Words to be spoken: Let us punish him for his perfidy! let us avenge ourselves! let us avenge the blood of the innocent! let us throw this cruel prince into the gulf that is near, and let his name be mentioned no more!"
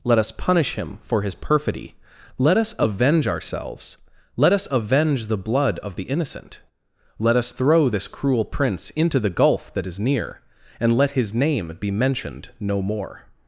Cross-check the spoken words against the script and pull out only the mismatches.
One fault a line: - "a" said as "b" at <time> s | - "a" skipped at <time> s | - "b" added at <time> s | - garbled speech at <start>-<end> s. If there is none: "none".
none